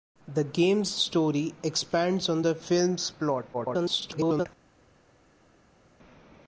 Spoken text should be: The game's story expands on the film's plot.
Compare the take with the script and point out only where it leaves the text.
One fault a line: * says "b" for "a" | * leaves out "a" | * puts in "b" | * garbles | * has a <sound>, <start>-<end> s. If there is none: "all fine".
* garbles